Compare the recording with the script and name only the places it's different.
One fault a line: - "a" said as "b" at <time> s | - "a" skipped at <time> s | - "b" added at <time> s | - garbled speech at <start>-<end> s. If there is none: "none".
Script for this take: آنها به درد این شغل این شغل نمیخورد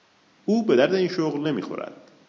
- "آنها" said as "او" at 0.5 s
- "این شغل" skipped at 1.5 s